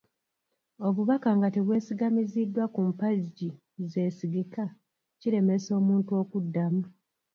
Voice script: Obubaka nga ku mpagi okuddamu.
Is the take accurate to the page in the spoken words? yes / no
no